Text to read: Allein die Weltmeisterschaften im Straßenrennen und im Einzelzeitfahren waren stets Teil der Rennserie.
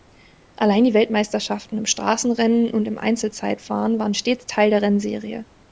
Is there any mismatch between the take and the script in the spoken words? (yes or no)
no